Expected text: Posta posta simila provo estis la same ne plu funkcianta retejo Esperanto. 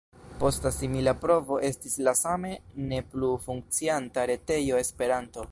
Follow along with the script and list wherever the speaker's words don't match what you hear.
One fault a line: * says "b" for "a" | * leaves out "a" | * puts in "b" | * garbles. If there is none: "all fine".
* leaves out "posta"